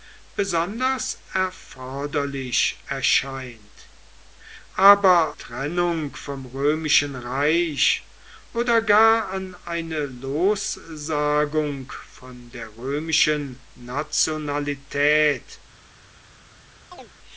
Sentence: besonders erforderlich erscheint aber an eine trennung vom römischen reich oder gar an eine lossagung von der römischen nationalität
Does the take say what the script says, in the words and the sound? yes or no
no